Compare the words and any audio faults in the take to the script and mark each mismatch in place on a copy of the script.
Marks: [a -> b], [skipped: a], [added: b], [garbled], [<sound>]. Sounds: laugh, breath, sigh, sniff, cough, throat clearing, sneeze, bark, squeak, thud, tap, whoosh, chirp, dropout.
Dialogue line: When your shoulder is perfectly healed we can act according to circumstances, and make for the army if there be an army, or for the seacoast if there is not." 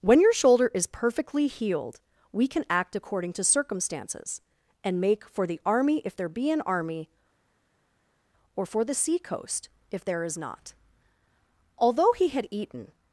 When your shoulder is perfectly healed we can act according to circumstances, and make for the army if there be an army, or for the seacoast if there is not." [added: Although he had eaten]